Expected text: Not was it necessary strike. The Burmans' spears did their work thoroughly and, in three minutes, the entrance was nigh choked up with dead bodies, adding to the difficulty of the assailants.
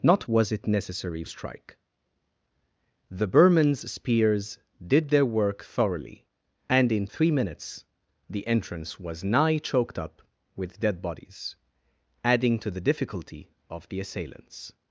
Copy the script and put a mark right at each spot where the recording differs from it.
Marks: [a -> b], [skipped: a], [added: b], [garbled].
Not was it necessary strike. The Burmans' spears did their work thoroughly and, in three minutes, the entrance was nigh choked up with dead bodies, adding to the difficulty of the assailants.